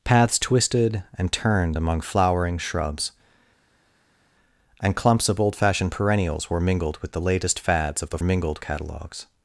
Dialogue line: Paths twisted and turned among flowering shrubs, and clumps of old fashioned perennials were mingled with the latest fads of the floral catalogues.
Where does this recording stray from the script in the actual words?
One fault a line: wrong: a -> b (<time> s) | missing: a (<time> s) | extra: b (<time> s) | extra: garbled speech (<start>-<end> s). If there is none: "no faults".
wrong: floral -> mingled (8.2 s)